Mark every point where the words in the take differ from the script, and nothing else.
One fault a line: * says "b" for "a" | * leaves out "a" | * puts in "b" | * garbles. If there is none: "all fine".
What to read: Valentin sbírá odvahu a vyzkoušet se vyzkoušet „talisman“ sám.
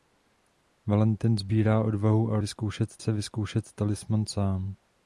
all fine